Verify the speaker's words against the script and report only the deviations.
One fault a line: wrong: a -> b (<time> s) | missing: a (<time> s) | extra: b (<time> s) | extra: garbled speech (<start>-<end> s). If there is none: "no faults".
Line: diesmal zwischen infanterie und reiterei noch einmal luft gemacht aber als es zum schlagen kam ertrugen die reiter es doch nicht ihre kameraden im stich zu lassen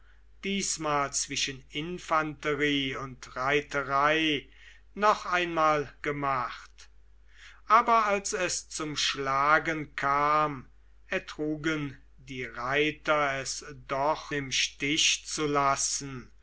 missing: luft (5.9 s)
missing: nicht ihre kameraden (14.3 s)